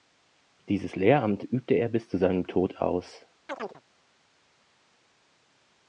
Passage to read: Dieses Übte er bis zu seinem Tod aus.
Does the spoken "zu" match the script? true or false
true